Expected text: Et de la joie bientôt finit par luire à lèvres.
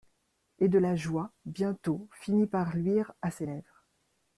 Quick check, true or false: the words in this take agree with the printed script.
false